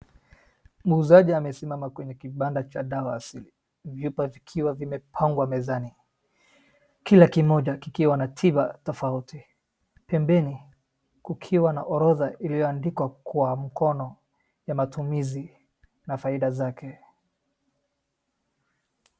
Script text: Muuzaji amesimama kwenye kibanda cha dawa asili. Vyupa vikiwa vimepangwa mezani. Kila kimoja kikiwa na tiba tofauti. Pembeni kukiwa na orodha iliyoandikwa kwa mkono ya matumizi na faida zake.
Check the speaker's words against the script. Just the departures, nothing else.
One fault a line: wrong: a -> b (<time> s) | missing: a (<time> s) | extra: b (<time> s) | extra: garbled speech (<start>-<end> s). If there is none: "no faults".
no faults